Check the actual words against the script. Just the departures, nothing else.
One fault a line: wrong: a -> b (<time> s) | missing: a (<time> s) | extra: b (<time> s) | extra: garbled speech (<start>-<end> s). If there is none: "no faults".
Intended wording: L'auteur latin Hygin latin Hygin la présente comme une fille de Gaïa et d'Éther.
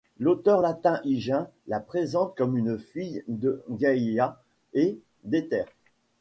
missing: latin Hygin (1.5 s)